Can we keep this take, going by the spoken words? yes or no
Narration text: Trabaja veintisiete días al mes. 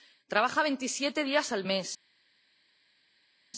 yes